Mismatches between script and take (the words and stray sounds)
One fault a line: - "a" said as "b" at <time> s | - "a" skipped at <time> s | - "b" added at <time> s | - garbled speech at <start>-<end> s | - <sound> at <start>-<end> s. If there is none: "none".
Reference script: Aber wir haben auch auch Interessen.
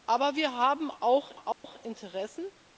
- dropout at 1.5-1.6 s